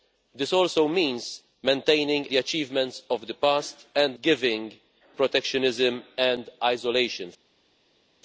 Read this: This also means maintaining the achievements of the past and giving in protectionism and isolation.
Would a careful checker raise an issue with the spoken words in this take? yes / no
no